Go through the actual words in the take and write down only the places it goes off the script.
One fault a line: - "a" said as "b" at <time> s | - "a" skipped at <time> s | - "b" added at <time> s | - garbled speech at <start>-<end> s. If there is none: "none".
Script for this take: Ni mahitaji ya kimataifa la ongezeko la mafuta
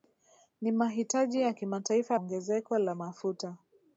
- "la" skipped at 2.2 s